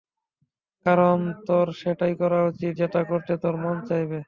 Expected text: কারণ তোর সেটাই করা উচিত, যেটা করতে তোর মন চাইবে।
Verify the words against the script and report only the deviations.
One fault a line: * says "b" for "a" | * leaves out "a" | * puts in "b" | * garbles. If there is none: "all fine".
all fine